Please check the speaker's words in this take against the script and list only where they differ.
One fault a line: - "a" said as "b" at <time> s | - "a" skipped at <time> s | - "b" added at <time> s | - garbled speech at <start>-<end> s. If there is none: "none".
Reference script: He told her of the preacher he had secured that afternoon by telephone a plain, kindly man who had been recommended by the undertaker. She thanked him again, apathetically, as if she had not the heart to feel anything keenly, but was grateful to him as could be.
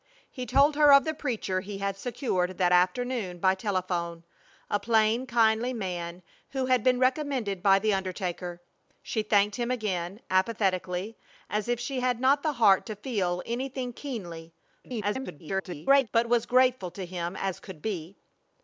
- garbled speech at 14.8-16.1 s